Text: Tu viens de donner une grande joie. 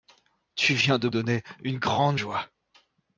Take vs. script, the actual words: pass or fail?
pass